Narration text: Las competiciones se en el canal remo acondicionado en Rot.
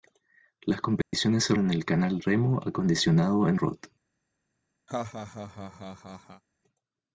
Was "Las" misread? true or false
false